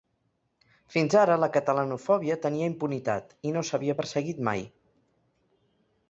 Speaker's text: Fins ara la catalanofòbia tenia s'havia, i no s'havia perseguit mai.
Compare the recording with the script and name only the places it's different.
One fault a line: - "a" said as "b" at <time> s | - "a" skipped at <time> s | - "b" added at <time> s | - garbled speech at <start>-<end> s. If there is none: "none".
- "s'havia" said as "impunitat" at 2.7 s